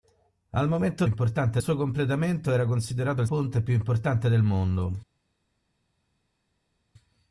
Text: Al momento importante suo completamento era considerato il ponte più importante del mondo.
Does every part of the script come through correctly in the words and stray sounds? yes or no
yes